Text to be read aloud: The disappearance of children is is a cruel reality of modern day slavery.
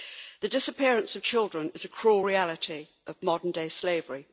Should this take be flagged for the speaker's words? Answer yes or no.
yes